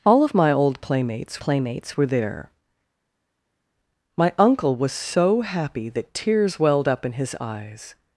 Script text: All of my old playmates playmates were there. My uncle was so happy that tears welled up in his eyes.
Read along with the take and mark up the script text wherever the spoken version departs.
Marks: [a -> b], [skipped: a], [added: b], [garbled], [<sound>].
All of my old playmates playmates were there. My uncle was so happy that tears welled up in his eyes.